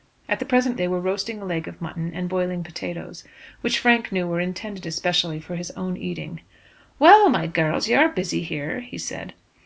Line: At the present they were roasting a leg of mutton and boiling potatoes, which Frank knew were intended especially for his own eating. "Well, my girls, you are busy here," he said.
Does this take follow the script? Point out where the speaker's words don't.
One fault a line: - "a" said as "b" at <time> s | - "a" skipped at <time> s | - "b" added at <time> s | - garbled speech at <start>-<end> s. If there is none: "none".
none